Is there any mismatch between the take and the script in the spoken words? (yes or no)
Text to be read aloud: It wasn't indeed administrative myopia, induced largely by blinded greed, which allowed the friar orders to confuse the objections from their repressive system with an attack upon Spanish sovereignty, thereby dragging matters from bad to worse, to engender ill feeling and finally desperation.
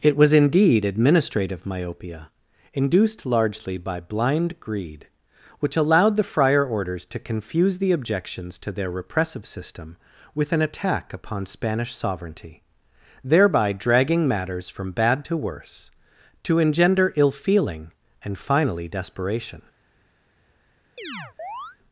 yes